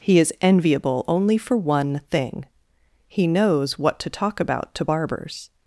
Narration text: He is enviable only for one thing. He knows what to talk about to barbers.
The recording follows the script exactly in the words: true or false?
true